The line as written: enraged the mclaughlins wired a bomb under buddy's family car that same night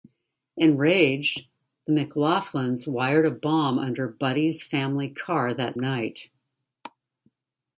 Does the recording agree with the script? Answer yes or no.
no